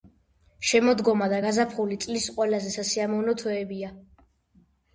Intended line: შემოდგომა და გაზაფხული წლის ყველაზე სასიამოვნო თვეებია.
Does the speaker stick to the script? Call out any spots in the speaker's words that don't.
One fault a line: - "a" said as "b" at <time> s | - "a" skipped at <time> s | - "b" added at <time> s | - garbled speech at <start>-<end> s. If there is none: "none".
none